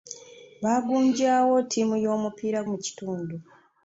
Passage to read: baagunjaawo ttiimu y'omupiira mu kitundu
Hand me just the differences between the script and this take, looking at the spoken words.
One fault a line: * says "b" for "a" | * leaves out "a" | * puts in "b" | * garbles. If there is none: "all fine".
all fine